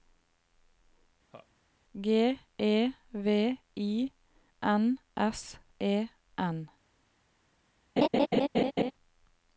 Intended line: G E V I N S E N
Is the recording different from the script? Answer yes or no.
no